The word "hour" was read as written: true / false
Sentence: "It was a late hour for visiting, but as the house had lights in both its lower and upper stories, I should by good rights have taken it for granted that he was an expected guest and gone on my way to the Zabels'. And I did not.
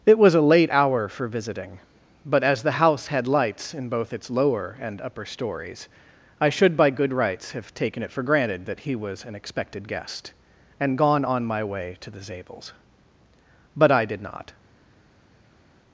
true